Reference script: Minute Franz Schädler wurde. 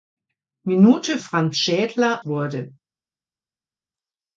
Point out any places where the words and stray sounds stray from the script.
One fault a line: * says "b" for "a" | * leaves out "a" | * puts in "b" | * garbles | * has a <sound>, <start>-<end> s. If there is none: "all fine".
all fine